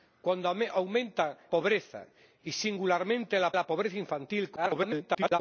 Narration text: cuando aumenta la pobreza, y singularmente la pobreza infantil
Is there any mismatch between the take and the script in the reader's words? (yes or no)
yes